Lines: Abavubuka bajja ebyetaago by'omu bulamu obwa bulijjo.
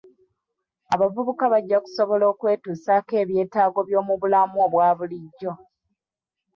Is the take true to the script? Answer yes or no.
no